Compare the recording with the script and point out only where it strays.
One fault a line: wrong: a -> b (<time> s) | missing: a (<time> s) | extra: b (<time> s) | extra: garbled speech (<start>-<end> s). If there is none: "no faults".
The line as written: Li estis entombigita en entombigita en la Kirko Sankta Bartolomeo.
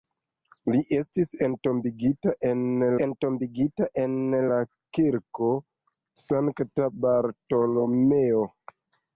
no faults